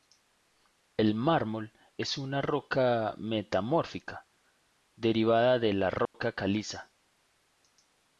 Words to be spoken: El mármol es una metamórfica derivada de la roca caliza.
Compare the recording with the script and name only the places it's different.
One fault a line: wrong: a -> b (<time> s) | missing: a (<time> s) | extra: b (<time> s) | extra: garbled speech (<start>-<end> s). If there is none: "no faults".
extra: roca (2.4 s)